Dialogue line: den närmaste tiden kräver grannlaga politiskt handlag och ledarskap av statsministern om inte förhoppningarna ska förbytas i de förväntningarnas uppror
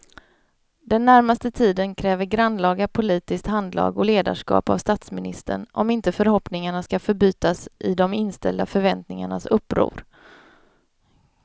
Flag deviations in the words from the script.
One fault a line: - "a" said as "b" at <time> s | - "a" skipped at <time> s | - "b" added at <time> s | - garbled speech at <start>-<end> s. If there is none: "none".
- "inställda" added at 8.1 s